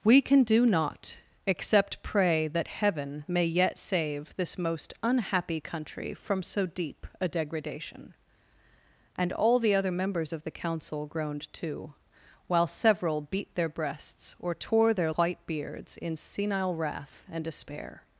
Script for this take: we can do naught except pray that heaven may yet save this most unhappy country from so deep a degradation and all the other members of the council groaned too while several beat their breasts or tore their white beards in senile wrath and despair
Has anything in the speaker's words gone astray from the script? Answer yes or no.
no